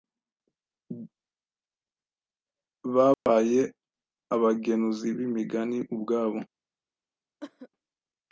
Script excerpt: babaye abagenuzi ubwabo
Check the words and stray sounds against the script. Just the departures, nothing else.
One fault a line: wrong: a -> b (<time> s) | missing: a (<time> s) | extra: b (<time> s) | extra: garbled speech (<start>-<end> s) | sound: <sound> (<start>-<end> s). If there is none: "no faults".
sound: dropout (3.1-3.3 s)
extra: b'imigani (5.2 s)
sound: cough (7.4-7.7 s)